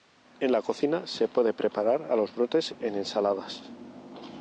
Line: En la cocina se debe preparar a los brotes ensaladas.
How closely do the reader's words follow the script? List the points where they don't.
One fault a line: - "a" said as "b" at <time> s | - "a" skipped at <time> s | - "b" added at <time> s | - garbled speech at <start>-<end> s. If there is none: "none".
- "debe" said as "puede" at 1.3 s
- "en" added at 2.8 s